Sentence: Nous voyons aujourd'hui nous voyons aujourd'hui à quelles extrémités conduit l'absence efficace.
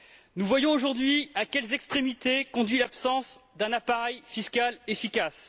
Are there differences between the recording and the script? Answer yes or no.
yes